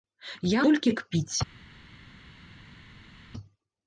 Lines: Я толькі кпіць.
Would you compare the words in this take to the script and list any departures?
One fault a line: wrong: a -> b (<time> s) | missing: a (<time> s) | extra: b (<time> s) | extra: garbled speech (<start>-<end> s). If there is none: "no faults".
no faults